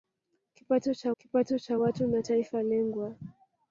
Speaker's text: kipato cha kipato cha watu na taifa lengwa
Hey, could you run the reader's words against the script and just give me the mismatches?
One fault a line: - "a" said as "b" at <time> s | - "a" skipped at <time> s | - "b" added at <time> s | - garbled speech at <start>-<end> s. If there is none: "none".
none